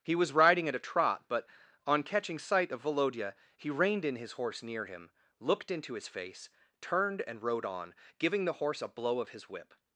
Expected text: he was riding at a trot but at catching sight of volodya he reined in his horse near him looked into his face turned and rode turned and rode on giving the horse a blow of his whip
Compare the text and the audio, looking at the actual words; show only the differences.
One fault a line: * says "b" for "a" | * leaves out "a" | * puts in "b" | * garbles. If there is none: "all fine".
* says "on" for "at"
* leaves out "turned and rode"